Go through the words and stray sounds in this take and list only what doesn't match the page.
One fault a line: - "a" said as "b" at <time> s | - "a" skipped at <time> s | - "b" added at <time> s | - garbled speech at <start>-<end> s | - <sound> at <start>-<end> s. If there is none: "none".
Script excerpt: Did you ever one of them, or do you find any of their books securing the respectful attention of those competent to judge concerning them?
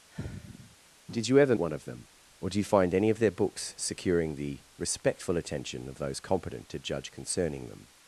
- sigh at 0.1-0.8 s